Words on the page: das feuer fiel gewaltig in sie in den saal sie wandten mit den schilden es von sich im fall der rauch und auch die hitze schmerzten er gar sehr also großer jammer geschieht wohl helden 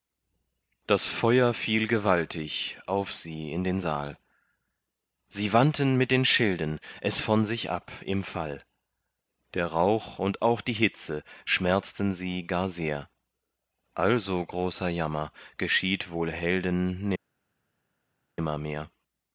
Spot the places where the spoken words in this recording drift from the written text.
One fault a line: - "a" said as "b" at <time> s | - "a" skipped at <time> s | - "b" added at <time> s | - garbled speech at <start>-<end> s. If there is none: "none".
- "in" said as "auf" at 2.9 s
- "ab" added at 7.7 s
- "er" said as "sie" at 12.1 s